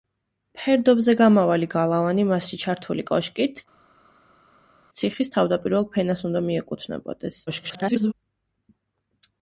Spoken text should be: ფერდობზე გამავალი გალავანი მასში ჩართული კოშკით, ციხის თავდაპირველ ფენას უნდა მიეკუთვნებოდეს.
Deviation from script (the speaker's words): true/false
true